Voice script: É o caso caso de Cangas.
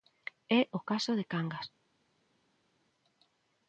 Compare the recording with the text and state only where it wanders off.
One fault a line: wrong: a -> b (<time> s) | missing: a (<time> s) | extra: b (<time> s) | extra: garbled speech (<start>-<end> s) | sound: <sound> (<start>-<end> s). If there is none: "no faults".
missing: caso (1.1 s)